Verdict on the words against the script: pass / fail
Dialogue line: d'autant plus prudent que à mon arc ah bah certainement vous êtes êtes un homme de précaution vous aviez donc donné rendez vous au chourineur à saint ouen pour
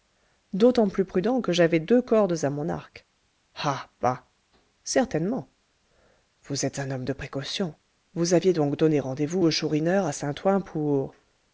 fail